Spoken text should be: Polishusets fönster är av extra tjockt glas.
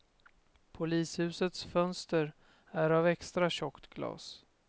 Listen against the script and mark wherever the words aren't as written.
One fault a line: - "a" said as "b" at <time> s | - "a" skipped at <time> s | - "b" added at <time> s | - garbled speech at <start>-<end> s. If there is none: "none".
none